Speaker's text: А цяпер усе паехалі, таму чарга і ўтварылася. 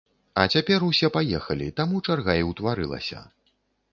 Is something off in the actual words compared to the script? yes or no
no